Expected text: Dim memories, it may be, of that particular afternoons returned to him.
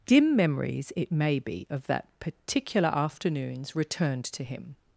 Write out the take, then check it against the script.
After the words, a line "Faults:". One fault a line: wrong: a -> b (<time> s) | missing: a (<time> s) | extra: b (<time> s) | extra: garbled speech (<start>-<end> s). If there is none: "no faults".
Dim memories, it may be, of that particular afternoons returned to him.
Faults:
no faults